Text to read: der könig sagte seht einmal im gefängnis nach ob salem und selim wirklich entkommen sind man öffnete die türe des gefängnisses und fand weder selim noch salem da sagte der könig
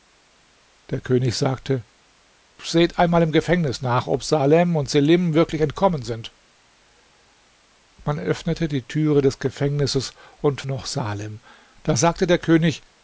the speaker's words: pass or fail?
fail